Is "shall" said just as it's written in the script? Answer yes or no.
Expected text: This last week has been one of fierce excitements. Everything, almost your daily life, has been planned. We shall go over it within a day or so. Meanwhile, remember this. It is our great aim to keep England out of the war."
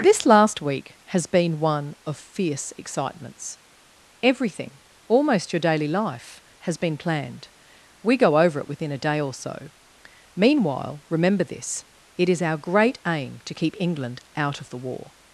no